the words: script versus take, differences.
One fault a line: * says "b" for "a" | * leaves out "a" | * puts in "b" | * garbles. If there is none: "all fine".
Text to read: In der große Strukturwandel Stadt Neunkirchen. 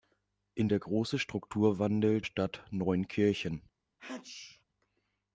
all fine